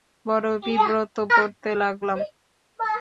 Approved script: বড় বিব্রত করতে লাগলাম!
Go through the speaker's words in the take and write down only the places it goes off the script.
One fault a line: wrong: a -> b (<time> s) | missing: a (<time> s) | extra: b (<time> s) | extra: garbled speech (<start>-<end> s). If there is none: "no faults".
no faults